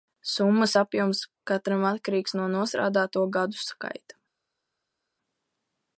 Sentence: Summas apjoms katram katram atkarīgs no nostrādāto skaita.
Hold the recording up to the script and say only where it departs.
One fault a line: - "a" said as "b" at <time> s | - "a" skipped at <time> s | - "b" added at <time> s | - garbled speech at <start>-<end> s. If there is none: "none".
- "katram" skipped at 1.9 s
- "gadu" added at 3.4 s